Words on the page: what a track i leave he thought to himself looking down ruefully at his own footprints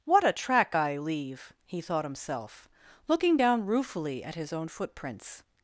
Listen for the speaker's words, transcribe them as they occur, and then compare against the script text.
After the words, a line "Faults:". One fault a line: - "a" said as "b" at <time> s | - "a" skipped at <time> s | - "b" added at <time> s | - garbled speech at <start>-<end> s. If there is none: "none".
what a track i leave he thought himself looking down ruefully at his own footprints
Faults:
- "to" skipped at 2.1 s